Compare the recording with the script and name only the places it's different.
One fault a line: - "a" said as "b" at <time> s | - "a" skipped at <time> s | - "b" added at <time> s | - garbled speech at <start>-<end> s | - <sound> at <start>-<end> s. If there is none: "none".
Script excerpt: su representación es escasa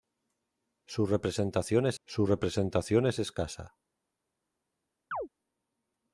- "su representación es" added at 2.0 s
- chirp at 5.1-5.3 s